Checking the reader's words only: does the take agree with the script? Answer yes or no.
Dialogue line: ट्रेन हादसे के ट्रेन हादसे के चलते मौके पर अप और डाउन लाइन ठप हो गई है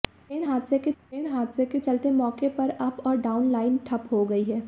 yes